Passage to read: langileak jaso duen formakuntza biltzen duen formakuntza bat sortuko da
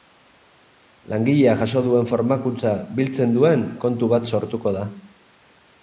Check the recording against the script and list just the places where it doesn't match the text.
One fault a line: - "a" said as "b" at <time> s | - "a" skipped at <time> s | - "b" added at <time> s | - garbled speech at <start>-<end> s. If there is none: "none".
- "formakuntza" said as "kontu" at 3.9 s